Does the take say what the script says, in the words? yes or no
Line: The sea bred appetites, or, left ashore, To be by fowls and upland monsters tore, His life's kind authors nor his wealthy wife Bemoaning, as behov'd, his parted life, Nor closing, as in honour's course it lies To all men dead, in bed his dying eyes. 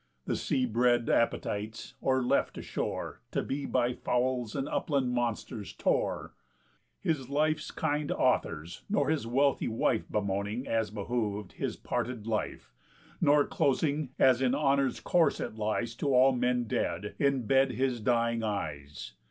yes